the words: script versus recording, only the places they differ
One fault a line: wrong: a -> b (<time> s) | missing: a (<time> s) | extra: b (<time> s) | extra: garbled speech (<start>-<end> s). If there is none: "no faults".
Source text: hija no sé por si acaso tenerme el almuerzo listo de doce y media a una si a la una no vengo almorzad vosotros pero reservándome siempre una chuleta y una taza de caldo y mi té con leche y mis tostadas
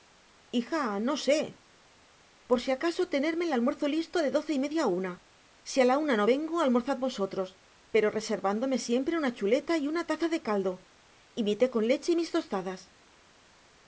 no faults